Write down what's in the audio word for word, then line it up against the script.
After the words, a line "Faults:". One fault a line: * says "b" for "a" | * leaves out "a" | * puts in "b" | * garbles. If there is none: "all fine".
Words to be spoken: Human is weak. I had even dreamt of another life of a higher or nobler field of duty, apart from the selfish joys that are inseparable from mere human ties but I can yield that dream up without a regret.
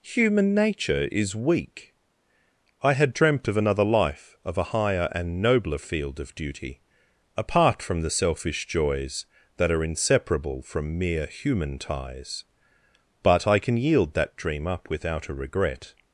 Human nature is weak. I had dreamt of another life of a higher and nobler field of duty, apart from the selfish joys that are inseparable from mere human ties but I can yield that dream up without a regret.
Faults:
* puts in "nature"
* leaves out "even"
* says "and" for "or"